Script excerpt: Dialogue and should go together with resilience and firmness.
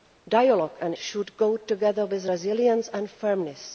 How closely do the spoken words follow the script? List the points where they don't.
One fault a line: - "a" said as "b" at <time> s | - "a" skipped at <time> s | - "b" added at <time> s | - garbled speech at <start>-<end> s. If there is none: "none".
none